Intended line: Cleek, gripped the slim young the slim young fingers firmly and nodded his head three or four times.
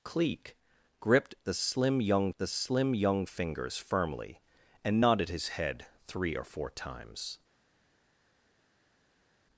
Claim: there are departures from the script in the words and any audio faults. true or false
false